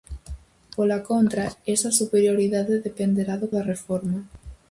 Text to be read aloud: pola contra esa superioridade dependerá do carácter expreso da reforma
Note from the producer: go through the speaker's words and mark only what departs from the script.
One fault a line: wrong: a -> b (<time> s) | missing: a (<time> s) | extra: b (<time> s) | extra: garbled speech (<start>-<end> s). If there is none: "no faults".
missing: carácter expreso (3.5 s)